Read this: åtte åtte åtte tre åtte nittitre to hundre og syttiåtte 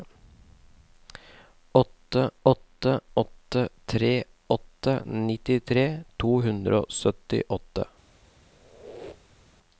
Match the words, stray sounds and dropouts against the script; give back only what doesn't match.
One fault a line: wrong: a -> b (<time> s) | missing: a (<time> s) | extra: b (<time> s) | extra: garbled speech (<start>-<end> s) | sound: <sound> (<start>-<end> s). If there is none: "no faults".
sound: squeak (8.5-9.6 s)